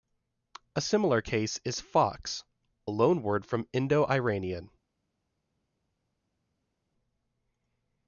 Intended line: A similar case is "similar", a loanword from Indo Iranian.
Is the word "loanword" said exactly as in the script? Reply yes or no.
yes